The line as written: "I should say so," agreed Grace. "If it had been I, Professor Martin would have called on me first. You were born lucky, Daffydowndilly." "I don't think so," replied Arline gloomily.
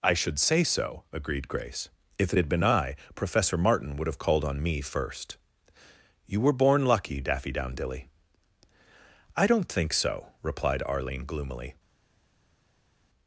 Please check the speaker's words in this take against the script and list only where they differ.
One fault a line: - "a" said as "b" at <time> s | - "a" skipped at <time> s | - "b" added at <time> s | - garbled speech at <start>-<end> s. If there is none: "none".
none